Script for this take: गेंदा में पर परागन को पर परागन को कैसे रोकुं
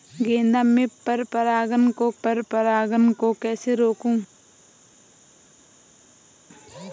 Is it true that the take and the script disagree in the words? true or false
false